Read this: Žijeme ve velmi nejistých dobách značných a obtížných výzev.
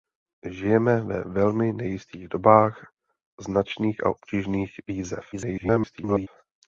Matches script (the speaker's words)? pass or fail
fail